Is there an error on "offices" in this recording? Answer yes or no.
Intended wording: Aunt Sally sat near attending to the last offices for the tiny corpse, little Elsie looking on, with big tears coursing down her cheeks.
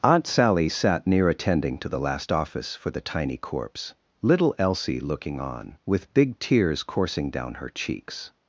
yes